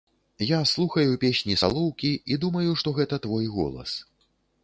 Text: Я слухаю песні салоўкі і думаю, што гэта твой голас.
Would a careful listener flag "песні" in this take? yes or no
no